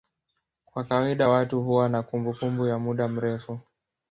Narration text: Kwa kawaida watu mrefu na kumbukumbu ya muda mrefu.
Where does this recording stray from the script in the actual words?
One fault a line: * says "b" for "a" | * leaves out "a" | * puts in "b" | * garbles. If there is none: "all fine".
* says "huwa" for "mrefu"